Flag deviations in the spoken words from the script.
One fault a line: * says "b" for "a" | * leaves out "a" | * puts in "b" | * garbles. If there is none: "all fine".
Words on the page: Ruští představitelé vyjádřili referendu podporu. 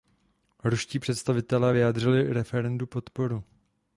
all fine